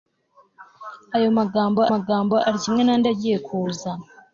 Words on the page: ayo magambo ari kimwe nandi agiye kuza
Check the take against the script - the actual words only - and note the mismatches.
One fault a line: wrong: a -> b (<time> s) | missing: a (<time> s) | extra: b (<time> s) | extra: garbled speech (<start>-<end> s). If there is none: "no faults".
extra: magambo (1.9 s)